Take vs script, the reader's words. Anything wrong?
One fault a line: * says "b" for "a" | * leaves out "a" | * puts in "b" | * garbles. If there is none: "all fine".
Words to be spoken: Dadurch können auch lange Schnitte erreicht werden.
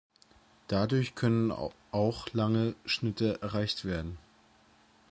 all fine